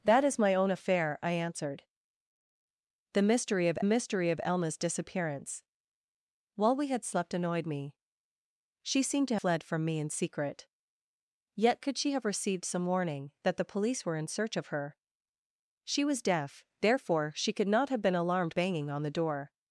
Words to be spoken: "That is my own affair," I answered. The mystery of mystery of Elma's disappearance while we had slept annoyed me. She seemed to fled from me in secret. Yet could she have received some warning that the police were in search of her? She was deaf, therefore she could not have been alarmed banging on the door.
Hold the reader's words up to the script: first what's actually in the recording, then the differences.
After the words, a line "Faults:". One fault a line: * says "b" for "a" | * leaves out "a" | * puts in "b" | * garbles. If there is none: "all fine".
"That is my own affair," I answered. The mystery of mystery of Elma's disappearance while we had slept annoyed me. She seemed to fled from me in secret. Yet could she have received some warning that the police were in search of her? She was deaf, therefore she could not have been alarmed banging on the door.
Faults:
all fine